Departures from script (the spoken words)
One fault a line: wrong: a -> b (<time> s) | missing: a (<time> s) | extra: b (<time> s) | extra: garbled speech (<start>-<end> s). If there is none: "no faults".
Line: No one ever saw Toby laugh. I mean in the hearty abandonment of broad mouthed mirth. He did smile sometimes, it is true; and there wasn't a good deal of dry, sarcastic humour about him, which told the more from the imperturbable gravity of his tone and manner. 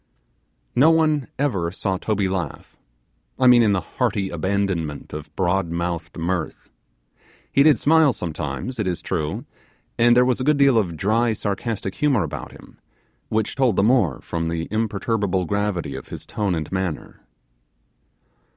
wrong: wasn't -> was (10.2 s)